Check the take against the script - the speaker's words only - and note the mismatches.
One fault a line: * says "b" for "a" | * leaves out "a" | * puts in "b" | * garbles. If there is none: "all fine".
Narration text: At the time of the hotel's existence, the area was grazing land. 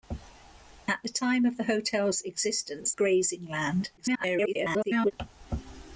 * leaves out "the area was"
* garbles